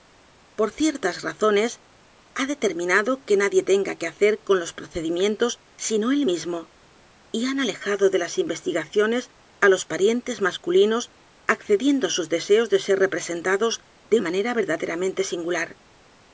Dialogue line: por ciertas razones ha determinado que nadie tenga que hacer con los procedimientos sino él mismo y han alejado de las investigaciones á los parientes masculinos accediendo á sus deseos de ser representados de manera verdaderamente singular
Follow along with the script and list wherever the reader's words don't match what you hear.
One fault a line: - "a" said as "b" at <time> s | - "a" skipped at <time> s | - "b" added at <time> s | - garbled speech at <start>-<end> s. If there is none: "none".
none